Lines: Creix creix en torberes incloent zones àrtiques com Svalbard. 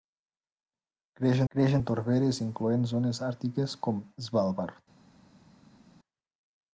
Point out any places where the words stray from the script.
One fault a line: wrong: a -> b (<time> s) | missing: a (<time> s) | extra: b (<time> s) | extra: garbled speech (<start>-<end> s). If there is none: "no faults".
no faults